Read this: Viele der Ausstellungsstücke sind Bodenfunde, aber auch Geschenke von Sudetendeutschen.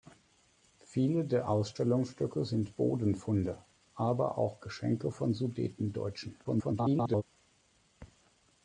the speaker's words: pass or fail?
fail